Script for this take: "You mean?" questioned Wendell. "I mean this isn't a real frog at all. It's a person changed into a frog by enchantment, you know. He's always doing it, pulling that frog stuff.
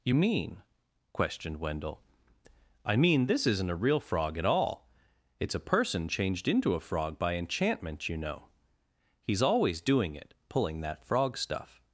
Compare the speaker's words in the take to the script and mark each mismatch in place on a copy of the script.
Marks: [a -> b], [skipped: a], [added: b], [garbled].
"You mean?" questioned Wendell. "I mean this isn't a real frog at all. It's a person changed into a frog by enchantment, you know. He's always doing it, pulling that frog stuff.